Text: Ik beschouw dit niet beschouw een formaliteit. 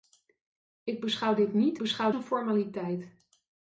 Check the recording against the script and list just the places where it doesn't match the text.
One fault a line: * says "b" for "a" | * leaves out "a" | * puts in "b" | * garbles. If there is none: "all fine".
all fine